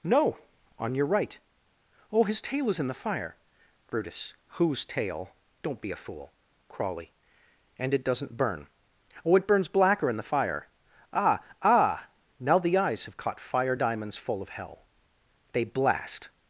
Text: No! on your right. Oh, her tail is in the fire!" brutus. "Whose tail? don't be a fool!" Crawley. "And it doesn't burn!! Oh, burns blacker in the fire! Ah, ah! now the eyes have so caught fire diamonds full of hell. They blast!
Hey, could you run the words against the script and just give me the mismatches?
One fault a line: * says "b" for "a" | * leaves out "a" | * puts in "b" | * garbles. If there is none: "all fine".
* says "his" for "her"
* puts in "it"
* leaves out "so"